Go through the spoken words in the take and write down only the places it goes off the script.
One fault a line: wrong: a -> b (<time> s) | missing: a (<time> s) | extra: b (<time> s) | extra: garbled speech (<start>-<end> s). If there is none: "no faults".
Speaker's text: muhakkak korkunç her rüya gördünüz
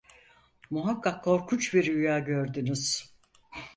wrong: her -> bir (1.7 s)